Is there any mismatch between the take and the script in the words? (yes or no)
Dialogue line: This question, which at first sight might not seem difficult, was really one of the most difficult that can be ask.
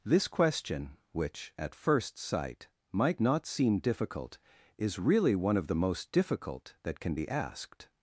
yes